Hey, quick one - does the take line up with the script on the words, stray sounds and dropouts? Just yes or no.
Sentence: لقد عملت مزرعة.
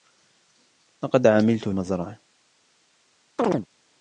no